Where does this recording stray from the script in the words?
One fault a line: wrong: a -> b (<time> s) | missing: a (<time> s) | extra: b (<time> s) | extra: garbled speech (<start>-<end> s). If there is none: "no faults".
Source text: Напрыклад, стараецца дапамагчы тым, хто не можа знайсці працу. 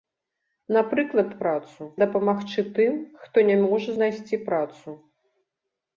wrong: стараецца -> працу (1.4 s)